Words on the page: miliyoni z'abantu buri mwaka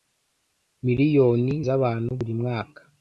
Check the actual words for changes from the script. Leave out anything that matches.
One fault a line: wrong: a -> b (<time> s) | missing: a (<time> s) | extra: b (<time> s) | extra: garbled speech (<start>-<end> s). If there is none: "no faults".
no faults